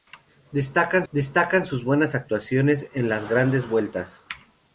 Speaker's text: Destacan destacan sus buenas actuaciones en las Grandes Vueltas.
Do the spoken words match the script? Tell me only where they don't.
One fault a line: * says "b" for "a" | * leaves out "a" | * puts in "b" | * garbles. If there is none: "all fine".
all fine